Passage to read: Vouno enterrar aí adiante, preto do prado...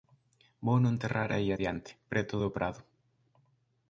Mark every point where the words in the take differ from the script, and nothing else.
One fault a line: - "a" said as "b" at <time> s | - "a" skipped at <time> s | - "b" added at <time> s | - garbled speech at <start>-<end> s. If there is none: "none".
none